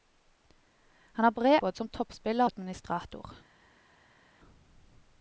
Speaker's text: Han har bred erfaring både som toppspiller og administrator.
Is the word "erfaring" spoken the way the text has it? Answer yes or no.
no